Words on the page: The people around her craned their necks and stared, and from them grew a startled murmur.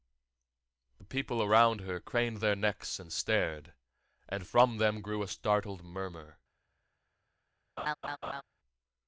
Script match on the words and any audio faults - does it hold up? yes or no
no